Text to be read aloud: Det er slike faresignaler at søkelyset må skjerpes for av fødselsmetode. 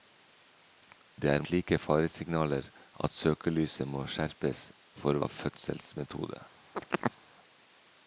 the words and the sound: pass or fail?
fail